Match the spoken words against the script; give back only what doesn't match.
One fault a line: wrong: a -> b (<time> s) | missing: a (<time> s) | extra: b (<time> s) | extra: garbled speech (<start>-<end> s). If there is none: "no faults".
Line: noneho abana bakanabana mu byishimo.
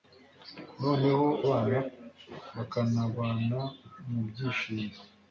no faults